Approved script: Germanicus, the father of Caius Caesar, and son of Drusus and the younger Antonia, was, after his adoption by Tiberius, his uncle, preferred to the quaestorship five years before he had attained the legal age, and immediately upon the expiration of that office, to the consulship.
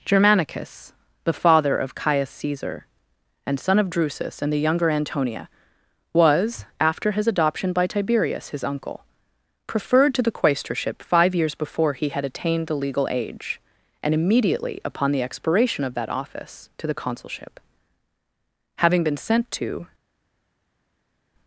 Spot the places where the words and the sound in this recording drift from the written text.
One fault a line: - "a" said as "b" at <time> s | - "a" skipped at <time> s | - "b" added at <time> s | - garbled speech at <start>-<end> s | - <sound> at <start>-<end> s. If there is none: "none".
- "Having been sent to" added at 18.8 s